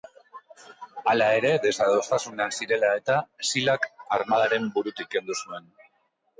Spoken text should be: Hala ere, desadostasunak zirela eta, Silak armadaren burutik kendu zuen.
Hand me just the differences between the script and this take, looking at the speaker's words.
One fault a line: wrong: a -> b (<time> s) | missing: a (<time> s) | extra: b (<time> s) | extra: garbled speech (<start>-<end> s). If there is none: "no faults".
no faults